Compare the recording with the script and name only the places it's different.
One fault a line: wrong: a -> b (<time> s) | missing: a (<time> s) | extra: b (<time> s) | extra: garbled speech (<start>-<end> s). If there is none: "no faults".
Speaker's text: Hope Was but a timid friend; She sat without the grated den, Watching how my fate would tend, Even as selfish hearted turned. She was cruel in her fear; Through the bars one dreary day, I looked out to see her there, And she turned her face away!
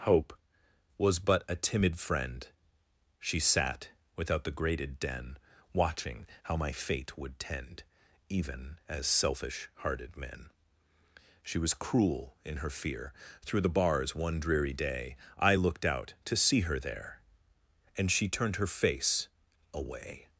wrong: turned -> men (10.2 s)